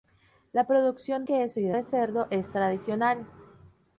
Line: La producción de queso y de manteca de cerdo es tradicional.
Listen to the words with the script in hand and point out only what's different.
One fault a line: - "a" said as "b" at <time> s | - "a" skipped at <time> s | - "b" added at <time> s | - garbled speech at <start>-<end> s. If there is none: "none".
- "de" skipped at 1.2 s
- "manteca" skipped at 1.8 s